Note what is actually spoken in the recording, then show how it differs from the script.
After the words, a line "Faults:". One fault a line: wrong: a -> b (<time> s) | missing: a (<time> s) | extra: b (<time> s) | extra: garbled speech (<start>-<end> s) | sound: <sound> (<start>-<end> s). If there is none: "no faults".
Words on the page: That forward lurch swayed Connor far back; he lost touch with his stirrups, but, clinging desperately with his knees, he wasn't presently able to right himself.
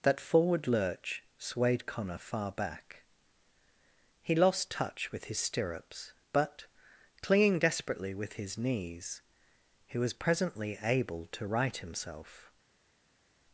That forward lurch swayed Connor far back; he lost touch with his stirrups, but, clinging desperately with his knees, he was presently able to right himself.
Faults:
wrong: wasn't -> was (10.0 s)